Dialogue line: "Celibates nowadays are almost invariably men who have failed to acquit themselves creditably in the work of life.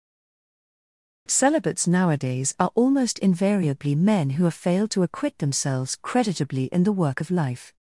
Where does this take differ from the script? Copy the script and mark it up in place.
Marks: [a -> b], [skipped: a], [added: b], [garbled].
"Celibates nowadays are almost invariably men who have failed to acquit themselves creditably in the work of life.